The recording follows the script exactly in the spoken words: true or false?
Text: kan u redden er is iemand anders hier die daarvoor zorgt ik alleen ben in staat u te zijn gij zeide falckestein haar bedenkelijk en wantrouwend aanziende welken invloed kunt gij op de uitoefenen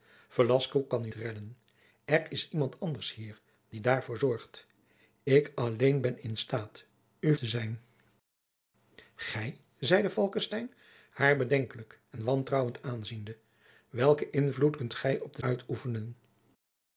true